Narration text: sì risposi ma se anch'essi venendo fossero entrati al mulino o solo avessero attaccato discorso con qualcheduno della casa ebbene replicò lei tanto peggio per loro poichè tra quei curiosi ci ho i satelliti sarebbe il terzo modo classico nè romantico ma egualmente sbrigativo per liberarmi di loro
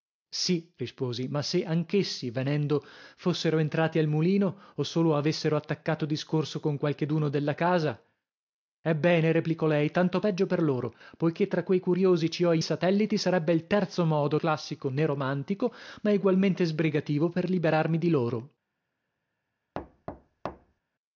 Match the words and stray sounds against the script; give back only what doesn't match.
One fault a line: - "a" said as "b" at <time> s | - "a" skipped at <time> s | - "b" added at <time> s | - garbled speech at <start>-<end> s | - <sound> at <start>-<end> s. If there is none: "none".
- thud at 19.7-20.8 s